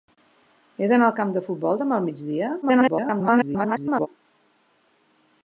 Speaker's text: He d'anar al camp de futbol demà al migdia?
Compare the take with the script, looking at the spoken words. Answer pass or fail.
fail